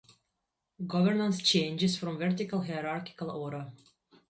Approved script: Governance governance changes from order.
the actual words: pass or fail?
fail